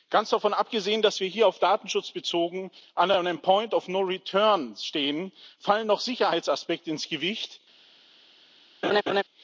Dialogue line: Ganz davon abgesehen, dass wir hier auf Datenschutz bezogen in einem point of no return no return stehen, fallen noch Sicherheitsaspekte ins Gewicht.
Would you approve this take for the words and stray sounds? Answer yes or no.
no